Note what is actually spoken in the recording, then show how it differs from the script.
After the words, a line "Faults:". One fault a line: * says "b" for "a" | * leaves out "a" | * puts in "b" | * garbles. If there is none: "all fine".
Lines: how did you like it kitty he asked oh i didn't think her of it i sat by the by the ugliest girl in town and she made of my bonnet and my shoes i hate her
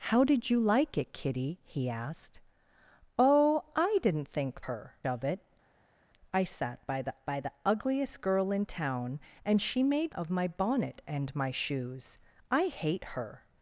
how did you like it kitty he asked oh i didn't think her of it i sat by the by the ugliest girl in town and she made of my bonnet and my shoes i hate her
Faults:
all fine